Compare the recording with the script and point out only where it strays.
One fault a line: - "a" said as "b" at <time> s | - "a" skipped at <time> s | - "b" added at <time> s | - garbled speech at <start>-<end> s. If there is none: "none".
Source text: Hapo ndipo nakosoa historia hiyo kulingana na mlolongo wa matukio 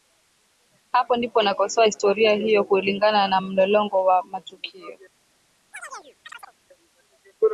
none